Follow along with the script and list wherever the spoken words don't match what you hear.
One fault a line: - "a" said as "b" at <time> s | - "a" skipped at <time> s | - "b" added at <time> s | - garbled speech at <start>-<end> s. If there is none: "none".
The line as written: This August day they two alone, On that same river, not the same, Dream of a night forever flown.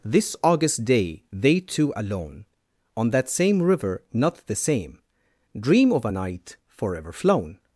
none